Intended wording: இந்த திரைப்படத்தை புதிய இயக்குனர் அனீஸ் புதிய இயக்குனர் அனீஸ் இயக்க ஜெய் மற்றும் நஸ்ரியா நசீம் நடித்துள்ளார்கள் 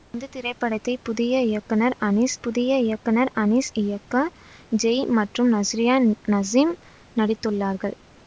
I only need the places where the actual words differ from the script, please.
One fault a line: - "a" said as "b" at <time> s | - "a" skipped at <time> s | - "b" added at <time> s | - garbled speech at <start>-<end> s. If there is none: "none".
none